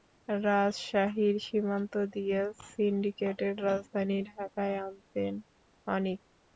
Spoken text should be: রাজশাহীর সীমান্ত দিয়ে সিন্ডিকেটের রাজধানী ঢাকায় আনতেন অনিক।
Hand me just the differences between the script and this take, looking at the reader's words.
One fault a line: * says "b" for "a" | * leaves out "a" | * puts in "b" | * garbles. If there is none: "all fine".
all fine